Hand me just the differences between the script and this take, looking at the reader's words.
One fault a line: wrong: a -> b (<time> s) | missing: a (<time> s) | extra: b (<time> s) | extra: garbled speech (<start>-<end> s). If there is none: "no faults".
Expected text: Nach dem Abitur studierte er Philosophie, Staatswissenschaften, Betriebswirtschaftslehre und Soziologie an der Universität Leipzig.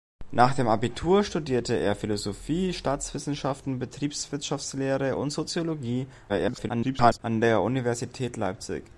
extra: garbled speech (6.3-7.2 s)